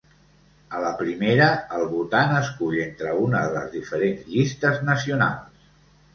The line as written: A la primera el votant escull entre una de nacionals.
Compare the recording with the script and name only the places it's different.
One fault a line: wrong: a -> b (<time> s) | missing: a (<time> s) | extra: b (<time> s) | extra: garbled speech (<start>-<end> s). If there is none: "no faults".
extra: les diferents llistes (3.6 s)